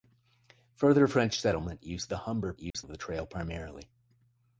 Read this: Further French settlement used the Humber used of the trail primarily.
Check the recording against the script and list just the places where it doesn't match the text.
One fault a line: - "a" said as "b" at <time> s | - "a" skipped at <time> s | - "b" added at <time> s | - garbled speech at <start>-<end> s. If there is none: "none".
none